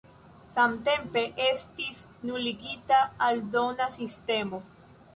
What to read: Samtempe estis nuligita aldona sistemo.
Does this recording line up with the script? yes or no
yes